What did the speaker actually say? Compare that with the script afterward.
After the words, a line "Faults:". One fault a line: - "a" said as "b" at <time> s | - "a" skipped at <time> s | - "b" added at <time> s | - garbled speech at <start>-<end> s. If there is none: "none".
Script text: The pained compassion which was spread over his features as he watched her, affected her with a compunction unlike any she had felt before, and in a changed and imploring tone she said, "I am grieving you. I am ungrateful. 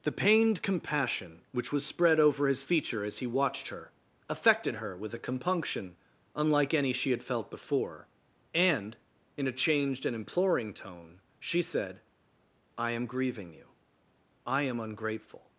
The pained compassion which was spread over his feature as he watched her, affected her with a compunction unlike any she had felt before, and in a changed and imploring tone she said, "I am grieving you. I am ungrateful.
Faults:
- "features" said as "feature" at 2.6 s